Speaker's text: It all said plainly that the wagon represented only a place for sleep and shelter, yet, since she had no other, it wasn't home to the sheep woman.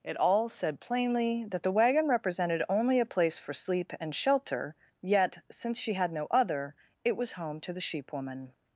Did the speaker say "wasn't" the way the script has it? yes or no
no